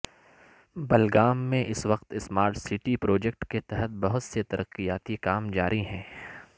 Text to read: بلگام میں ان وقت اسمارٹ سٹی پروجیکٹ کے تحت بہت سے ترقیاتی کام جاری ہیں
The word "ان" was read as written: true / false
false